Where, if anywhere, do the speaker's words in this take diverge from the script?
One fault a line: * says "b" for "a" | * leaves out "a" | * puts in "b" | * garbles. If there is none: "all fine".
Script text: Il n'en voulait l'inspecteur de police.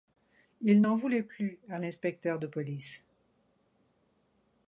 * puts in "plus à"